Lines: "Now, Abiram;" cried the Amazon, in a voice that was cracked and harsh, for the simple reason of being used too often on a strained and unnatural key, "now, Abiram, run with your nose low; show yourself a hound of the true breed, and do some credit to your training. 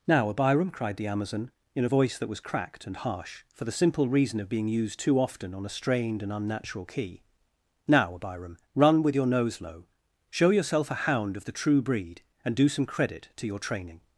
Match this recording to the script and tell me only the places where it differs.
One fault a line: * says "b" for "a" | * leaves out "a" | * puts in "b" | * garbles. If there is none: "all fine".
all fine